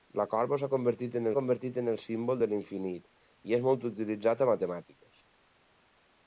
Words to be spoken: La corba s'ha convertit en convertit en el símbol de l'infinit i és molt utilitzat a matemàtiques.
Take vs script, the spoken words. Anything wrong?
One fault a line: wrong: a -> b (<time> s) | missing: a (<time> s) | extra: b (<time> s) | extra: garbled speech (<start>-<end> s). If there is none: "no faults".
no faults